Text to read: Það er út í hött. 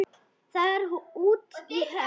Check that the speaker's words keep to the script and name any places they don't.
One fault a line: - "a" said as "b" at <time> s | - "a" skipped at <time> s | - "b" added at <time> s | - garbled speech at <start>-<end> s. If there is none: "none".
none